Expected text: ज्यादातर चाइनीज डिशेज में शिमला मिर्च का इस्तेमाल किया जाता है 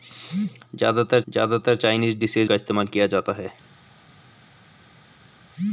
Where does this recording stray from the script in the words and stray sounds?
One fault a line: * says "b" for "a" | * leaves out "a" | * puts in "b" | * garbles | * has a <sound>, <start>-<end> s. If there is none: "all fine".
* puts in "ज्यादातर"
* leaves out "में शिमला मिर्च"